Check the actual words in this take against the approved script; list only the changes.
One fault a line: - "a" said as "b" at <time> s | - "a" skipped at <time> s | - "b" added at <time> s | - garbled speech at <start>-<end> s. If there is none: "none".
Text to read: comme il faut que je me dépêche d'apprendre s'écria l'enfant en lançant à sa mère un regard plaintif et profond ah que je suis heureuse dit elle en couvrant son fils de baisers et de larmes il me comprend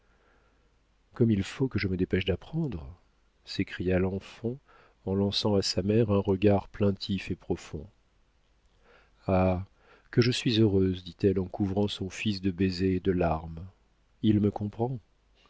none